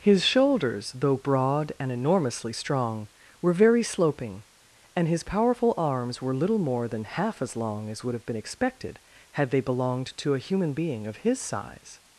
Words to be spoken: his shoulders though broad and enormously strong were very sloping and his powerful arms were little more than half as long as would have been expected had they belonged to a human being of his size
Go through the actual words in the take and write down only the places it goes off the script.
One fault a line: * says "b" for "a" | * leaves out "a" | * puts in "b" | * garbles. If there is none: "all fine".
all fine